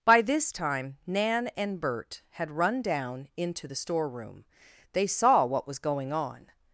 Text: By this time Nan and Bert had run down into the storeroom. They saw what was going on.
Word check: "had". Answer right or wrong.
right